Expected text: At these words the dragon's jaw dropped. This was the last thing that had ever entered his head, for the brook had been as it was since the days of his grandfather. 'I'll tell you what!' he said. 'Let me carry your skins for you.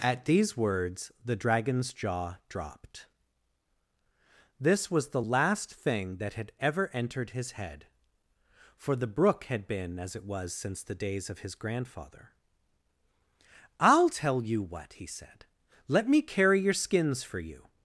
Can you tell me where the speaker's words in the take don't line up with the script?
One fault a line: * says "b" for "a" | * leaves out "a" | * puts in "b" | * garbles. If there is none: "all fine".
all fine